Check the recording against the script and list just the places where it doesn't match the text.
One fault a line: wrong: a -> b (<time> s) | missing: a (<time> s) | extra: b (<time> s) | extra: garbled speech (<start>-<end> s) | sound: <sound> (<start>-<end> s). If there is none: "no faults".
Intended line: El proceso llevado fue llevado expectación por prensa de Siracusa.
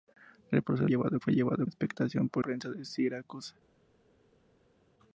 no faults